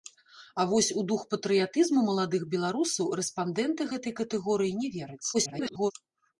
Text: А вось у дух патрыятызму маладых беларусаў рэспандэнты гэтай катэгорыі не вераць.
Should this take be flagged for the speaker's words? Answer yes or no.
yes